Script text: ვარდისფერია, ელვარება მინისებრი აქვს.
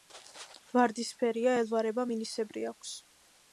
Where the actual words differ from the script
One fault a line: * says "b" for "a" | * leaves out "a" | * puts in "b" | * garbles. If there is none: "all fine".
all fine